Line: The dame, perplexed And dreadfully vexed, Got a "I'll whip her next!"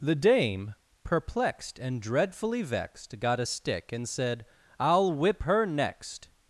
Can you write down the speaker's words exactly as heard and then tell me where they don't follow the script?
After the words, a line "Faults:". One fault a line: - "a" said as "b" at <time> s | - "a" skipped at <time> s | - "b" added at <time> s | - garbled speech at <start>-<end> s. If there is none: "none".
The dame, perplexed And dreadfully vexed, Got a stick and said, "I'll whip her next!"
Faults:
- "stick and said" added at 3.4 s